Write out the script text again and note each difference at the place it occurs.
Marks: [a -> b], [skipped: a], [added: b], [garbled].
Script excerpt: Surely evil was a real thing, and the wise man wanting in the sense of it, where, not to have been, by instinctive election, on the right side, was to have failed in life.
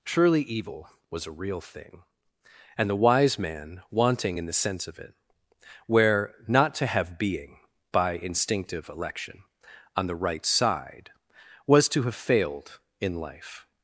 Surely evil was a real thing, and the wise man wanting in the sense of it, where, not to have [been, -> being] by instinctive election, on the right side, was to have failed in life.